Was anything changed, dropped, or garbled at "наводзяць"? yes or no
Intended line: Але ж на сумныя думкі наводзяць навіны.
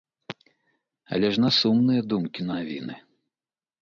yes